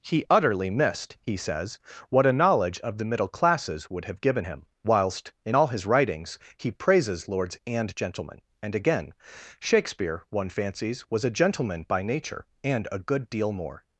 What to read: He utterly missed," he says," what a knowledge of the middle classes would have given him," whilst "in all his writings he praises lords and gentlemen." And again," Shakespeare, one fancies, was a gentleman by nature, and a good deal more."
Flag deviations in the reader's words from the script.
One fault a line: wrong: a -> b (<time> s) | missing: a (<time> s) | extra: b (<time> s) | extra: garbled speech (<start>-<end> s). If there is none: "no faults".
no faults